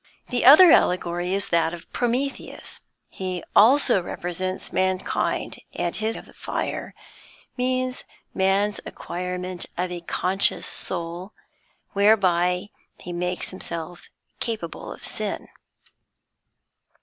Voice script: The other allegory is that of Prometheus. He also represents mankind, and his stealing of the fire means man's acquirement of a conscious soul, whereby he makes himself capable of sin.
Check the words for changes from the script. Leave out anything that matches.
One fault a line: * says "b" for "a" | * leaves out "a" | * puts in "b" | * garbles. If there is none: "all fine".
* leaves out "stealing"